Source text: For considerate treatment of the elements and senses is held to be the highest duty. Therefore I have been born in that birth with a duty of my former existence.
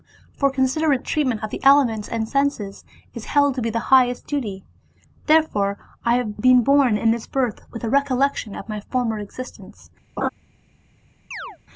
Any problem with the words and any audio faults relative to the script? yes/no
yes